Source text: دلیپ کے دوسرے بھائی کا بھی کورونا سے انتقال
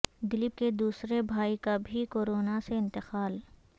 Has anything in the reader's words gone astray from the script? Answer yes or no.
no